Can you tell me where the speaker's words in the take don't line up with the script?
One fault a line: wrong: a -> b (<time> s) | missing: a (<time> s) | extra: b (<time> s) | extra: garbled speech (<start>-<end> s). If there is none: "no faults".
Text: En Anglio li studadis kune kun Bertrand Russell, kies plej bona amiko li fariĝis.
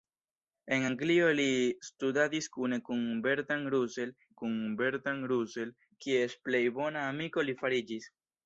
extra: kun Bertrand Russell (4.4 s)